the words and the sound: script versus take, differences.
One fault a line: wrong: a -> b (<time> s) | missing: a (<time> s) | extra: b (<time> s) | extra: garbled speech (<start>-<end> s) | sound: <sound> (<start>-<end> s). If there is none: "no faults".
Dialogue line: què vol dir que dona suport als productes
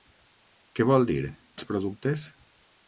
missing: que dona suport (1.2 s)